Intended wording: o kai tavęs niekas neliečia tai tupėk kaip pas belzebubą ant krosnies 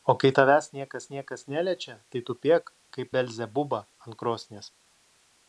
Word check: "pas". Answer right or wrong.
wrong